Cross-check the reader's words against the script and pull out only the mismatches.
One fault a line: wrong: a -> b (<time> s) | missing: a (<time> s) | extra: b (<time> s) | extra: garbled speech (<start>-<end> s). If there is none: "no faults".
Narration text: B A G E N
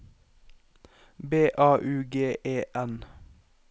extra: U (1.8 s)